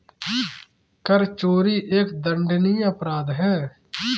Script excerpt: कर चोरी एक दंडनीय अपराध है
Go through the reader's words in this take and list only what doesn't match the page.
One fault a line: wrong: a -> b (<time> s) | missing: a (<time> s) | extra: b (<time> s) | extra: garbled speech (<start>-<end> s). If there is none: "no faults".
no faults